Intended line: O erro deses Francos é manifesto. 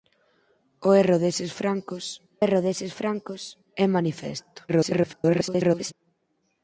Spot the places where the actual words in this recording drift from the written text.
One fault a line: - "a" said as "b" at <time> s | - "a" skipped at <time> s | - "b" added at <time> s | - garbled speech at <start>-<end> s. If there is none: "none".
- "erro deses Francos" added at 2.4 s
- garbled speech at 4.7-5.9 s